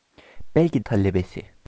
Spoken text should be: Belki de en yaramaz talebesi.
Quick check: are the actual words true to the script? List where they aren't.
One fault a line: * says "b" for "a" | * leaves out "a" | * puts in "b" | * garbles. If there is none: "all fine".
* leaves out "de en yaramaz"